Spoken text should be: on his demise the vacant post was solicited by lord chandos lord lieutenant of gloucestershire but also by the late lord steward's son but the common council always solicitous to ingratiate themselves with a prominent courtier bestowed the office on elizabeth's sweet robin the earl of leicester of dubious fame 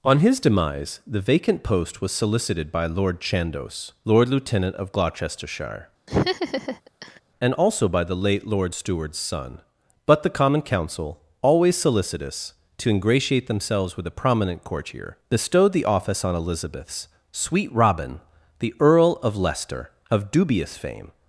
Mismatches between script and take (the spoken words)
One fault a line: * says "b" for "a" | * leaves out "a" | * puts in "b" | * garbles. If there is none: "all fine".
* says "and" for "but"